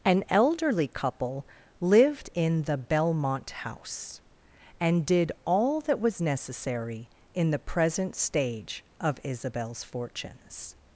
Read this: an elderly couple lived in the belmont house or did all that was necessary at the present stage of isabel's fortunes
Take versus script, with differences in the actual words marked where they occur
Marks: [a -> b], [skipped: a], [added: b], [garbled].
an elderly couple lived in the belmont house [or -> and] did all that was necessary [at -> in] the present stage of isabel's fortunes